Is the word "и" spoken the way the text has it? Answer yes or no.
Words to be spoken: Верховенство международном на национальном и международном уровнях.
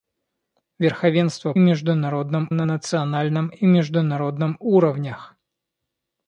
yes